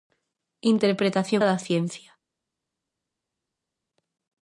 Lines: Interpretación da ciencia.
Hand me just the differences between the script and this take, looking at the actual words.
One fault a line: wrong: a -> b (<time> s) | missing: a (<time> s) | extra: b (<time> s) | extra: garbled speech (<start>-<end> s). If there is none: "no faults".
no faults